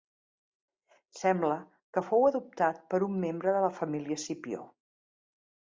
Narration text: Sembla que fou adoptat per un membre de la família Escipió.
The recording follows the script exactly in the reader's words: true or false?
true